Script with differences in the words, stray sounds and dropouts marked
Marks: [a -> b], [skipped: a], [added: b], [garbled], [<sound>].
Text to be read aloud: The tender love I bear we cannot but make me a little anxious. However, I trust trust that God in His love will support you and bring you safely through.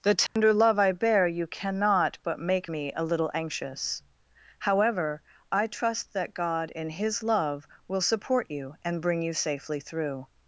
The tender [dropout] love I bear [we -> you] cannot but make me a little anxious. However, I trust [skipped: trust] that God in His love will support you and bring you safely through.